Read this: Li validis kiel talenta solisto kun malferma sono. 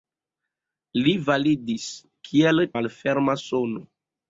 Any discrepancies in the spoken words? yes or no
yes